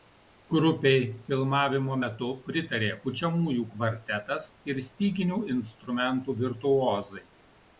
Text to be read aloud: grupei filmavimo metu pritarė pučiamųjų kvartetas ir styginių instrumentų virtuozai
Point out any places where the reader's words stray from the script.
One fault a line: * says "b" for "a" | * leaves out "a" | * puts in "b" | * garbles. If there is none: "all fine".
all fine